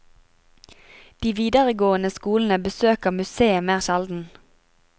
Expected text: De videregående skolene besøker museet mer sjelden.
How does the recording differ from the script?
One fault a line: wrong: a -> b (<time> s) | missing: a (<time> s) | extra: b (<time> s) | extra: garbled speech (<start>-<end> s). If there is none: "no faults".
no faults